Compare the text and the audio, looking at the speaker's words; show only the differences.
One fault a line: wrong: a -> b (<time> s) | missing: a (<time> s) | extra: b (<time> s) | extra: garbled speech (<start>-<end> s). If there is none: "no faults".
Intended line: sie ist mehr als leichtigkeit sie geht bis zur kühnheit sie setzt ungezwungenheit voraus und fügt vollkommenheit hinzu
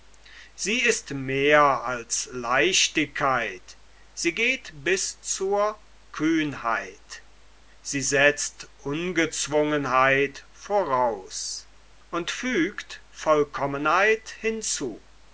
no faults